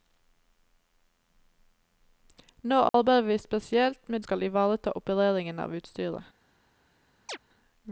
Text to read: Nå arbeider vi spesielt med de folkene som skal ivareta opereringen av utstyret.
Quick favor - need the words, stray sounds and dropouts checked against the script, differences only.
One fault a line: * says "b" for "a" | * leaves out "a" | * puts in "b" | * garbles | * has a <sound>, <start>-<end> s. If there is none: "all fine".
* has a dropout, 2.9-2.9 s
* leaves out "de folkene som"
* has a chirp, 7.3-7.4 s